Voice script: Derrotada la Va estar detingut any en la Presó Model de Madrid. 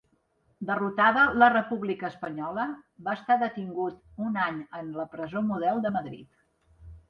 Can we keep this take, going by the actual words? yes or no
no